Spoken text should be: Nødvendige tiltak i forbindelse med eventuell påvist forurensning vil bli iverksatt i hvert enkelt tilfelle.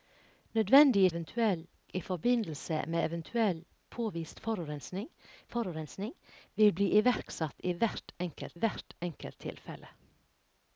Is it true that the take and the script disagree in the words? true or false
true